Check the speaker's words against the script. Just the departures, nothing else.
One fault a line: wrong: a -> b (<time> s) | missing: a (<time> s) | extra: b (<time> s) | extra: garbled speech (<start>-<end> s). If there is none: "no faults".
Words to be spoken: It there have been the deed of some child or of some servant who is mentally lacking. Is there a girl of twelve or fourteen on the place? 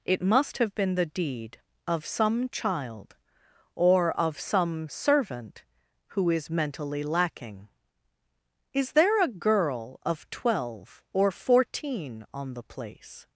wrong: there -> must (0.2 s)